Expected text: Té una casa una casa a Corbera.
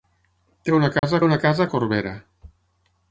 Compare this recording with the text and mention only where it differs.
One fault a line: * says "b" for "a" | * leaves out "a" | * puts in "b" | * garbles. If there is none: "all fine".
all fine